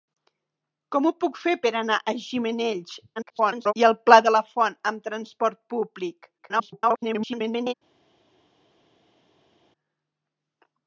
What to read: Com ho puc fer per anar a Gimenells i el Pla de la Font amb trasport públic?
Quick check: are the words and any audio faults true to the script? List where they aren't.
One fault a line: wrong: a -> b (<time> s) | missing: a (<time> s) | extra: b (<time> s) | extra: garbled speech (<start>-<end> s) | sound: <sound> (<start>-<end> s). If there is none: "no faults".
extra: garbled speech (3.2-3.7 s)
extra: garbled speech (6.4-7.7 s)